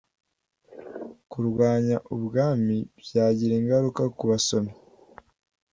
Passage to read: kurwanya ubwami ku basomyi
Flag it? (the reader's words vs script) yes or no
yes